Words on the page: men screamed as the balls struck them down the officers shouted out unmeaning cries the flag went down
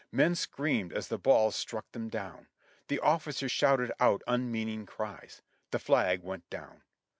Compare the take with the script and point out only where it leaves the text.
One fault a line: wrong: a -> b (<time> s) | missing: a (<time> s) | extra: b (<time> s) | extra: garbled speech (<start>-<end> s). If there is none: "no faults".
no faults